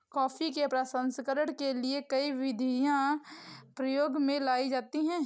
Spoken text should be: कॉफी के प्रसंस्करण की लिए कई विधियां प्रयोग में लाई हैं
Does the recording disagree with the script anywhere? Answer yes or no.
yes